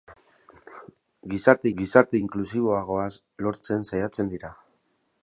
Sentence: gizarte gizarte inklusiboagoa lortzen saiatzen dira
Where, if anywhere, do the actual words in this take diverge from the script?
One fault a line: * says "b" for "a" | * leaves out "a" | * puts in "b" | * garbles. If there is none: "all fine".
all fine